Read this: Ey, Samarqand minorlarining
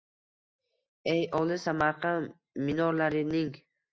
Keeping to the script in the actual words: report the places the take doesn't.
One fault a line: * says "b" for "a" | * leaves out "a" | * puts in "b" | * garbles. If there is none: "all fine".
* puts in "olis"